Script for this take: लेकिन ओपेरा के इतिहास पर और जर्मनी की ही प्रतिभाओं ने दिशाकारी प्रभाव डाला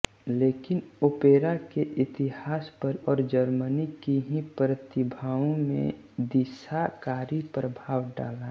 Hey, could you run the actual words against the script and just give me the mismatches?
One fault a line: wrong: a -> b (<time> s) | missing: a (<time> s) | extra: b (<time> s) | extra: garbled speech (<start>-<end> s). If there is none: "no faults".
no faults